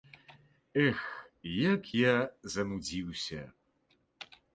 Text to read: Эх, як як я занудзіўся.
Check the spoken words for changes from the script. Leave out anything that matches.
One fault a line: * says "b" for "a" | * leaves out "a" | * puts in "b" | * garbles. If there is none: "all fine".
* leaves out "як"